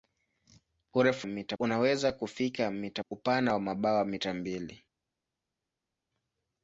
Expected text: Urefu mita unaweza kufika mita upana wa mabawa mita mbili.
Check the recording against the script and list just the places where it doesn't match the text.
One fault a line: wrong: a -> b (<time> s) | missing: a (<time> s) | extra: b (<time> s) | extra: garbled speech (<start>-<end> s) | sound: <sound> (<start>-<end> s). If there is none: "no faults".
no faults